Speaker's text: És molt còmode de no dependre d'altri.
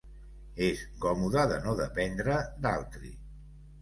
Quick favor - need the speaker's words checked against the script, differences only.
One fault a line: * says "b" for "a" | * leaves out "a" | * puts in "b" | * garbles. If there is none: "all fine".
* leaves out "molt"